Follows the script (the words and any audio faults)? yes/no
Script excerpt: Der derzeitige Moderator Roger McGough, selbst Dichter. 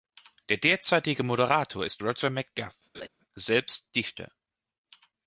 no